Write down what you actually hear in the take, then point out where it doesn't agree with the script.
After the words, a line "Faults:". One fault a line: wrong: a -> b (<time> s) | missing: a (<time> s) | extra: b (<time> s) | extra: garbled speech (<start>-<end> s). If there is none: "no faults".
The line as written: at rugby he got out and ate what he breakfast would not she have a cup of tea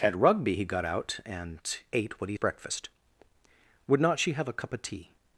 at rugby he got out and ate what he breakfast would not she have a cup of tea
Faults:
no faults